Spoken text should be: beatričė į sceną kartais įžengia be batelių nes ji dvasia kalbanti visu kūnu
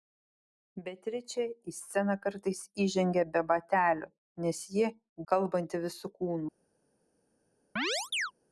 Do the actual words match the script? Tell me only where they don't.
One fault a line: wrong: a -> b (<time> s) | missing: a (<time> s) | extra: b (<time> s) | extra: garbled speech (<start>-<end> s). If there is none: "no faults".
missing: dvasia (4.9 s)